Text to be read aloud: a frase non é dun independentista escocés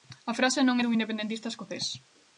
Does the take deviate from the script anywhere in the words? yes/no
no